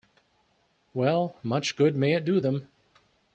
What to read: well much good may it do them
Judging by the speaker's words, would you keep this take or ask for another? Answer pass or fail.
pass